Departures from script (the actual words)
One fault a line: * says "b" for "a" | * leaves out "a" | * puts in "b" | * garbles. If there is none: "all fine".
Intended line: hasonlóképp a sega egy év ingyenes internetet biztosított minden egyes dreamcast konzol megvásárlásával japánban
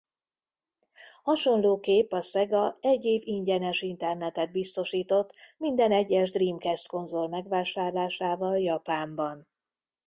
all fine